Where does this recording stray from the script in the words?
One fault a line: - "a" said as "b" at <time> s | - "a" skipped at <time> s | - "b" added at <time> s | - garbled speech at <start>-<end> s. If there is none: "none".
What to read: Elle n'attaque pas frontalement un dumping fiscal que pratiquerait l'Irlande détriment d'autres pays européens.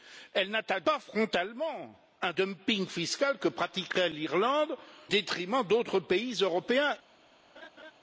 none